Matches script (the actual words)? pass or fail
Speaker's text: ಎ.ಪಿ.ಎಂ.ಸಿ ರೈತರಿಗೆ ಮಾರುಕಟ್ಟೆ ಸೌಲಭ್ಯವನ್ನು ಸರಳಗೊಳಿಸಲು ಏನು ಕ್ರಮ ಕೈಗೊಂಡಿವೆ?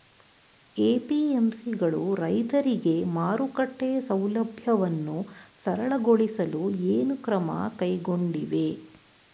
fail